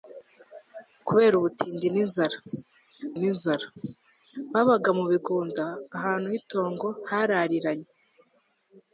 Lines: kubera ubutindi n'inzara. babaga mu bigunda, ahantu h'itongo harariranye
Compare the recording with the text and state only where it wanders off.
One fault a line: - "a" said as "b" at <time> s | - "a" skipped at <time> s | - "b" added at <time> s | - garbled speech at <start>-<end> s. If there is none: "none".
- "n'inzara" added at 3.2 s